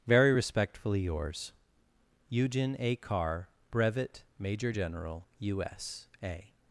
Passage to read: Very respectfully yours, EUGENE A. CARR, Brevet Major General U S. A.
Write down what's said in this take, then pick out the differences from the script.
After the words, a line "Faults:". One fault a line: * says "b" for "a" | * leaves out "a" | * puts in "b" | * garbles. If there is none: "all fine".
Very respectfully yours, EUGENE A. CARR, Brevet Major General U S. A.
Faults:
all fine